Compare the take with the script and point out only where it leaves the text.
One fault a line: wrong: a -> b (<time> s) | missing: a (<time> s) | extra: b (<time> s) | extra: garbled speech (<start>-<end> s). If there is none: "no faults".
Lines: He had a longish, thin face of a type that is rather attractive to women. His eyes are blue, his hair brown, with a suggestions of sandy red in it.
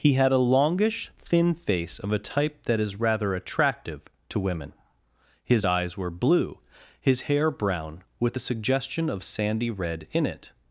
wrong: are -> were (6.0 s)
wrong: suggestions -> suggestion (8.4 s)